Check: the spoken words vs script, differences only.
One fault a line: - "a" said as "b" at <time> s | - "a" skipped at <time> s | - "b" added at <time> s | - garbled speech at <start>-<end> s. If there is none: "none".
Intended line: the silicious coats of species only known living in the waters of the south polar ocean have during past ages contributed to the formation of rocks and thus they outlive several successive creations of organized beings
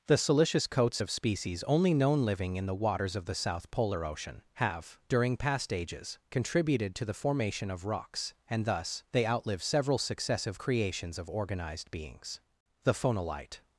- "the phonolite" added at 12.8 s